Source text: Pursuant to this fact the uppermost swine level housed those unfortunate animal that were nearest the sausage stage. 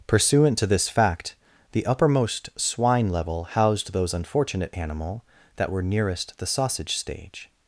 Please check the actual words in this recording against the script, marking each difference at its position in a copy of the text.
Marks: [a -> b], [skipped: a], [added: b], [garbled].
Pursuant to this fact the uppermost swine level housed those unfortunate animal that were nearest the sausage stage.